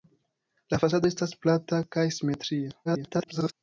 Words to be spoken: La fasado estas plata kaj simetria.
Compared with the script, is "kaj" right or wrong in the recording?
right